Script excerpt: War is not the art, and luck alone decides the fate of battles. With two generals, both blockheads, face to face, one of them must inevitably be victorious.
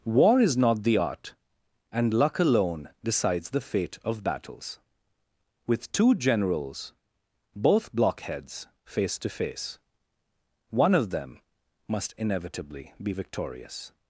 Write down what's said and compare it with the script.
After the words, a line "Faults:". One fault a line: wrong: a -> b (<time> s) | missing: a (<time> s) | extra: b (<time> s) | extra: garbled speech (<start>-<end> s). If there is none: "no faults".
War is not the art, and luck alone decides the fate of battles. With two generals, both blockheads, face to face, one of them must inevitably be victorious.
Faults:
no faults